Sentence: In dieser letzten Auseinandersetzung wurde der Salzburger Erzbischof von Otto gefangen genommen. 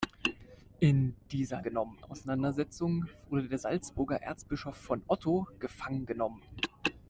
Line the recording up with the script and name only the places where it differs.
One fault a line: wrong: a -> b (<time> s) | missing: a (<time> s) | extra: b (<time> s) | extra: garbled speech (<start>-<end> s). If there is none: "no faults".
wrong: letzten -> genommen (1.6 s)